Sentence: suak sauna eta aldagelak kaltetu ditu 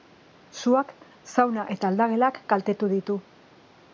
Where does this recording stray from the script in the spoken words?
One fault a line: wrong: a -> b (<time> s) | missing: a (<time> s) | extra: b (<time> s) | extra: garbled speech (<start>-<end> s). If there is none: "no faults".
no faults